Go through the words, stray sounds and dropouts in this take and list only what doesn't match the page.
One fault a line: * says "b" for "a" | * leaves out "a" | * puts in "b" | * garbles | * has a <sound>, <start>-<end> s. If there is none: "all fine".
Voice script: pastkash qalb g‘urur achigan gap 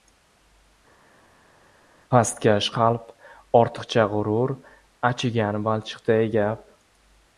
* puts in "ortiqcha"
* puts in "balchiqday"